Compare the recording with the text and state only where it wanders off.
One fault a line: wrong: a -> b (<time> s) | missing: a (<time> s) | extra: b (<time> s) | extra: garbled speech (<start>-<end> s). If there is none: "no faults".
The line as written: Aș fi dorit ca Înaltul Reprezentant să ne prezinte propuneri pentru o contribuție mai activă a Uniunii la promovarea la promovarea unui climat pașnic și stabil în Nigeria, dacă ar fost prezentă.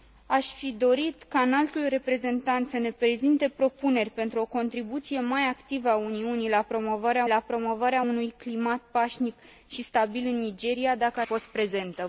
no faults